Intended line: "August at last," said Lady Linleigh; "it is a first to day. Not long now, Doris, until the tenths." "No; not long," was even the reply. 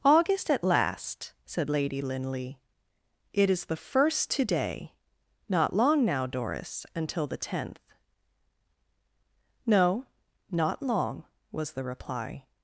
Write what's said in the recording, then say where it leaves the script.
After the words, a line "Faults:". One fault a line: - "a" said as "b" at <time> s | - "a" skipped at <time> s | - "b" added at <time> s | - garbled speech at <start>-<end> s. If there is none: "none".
"August at last," said Lady Linleigh; "it is the first to day. Not long now, Doris, until the tenth." "No; not long," was the reply.
Faults:
- "a" said as "the" at 3.7 s
- "tenths" said as "tenth" at 7.4 s
- "even" skipped at 11.7 s